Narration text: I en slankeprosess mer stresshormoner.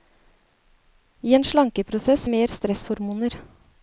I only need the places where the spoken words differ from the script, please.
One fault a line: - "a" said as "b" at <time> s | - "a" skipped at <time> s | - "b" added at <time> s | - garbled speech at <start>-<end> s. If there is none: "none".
none